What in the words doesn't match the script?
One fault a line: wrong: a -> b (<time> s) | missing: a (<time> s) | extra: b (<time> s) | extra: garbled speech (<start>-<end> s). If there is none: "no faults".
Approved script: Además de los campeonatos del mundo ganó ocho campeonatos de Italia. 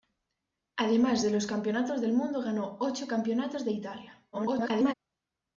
extra: garbled speech (4.3-4.9 s)